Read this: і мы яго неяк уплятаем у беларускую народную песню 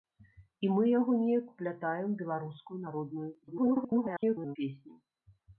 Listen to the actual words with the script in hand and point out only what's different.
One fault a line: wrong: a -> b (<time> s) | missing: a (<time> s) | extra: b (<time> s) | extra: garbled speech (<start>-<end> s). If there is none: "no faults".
extra: garbled speech (3.4-4.6 s)